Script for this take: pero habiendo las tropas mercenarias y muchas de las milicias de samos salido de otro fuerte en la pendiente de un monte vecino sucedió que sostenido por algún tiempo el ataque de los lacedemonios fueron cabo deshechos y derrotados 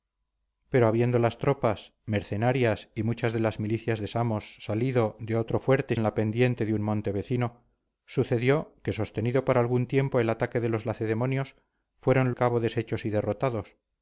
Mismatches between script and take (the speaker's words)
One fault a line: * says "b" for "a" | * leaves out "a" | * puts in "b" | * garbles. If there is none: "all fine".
all fine